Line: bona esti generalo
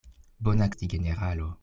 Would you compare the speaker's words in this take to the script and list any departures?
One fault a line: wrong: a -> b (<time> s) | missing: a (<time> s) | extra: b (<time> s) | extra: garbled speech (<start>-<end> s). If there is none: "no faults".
no faults